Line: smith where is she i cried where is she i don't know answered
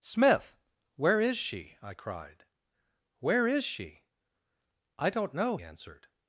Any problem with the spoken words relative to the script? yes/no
no